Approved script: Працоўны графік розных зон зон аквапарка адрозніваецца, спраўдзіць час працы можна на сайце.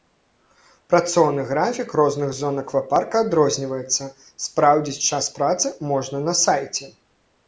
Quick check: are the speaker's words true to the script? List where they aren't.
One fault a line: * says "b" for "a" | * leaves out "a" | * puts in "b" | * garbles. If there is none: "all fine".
* leaves out "зон"